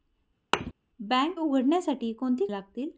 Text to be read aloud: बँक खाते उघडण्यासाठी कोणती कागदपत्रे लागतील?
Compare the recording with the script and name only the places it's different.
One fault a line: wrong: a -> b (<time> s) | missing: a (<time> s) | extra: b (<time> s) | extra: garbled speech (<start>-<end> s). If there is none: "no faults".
missing: खाते (1.4 s)
missing: कागदपत्रे (2.5 s)